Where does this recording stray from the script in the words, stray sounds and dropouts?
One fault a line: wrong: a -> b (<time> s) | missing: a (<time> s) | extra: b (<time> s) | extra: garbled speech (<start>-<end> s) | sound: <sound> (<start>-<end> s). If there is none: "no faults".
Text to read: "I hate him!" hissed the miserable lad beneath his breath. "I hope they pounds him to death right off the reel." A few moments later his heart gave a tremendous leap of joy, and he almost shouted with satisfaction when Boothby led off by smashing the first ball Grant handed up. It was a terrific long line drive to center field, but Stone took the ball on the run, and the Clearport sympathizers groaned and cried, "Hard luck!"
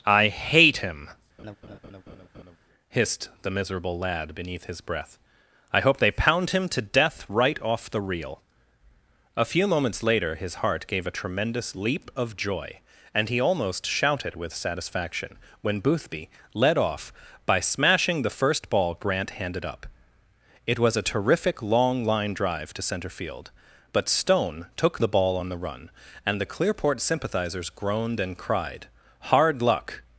sound: laugh (1.4-2.6 s)
wrong: pounds -> pound (6.1 s)